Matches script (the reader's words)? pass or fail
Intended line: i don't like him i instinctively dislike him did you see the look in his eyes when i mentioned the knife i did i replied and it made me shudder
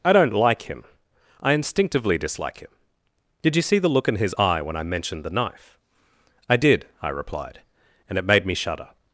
fail